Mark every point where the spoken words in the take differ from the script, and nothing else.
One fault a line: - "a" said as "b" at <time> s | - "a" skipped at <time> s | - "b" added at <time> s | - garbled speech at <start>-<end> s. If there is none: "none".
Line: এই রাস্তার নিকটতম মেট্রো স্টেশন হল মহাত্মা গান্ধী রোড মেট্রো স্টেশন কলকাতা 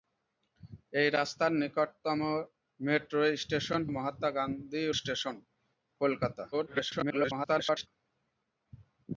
- "হল" skipped at 3.8 s
- "রোড মেট্রো" skipped at 4.8 s
- garbled speech at 6.5-7.9 s